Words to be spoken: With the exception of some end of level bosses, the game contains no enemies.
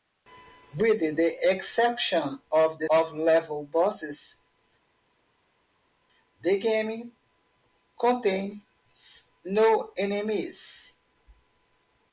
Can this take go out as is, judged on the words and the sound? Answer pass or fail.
fail